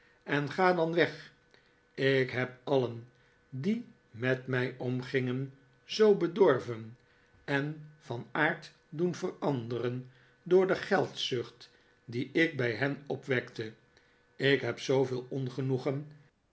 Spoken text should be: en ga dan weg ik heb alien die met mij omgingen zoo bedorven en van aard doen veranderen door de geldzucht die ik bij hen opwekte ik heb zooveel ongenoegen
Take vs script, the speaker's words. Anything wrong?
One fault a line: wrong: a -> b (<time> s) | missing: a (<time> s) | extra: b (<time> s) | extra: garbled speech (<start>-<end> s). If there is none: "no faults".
no faults